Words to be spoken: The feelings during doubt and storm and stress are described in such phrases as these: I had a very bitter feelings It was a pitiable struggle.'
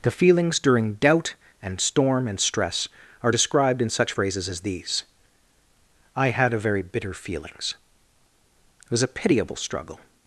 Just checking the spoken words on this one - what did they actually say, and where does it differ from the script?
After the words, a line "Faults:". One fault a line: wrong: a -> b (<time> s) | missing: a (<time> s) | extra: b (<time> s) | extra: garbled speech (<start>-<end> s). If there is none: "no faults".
The feelings during doubt and storm and stress are described in such phrases as these: I had a very bitter feelings It was a pitiable struggle.'
Faults:
no faults